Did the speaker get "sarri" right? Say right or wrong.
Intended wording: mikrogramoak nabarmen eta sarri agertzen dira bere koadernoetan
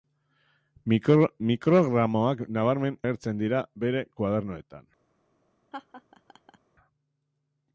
wrong